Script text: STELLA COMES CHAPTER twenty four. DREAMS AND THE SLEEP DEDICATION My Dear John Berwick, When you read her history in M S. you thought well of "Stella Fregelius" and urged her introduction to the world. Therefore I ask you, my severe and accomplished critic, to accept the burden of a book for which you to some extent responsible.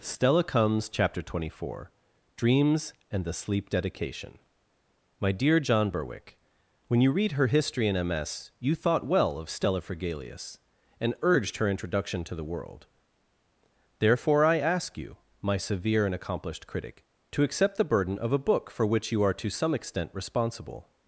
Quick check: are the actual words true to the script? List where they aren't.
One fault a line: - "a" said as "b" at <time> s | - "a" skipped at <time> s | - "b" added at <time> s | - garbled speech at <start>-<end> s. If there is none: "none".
- "are" added at 19.2 s